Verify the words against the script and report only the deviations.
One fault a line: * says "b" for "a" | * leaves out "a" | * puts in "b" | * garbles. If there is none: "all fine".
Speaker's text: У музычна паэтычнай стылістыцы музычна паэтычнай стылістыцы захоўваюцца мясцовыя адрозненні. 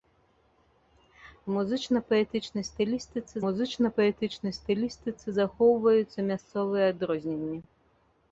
all fine